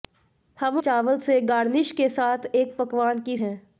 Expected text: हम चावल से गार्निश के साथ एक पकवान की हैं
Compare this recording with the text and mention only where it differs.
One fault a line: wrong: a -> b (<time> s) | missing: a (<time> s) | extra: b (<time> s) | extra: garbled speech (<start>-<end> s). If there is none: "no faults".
no faults